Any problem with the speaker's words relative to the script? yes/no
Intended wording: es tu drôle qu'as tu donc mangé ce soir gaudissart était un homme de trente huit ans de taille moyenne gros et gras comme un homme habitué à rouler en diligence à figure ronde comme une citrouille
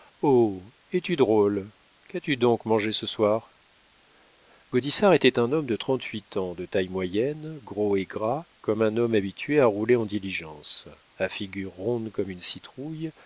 no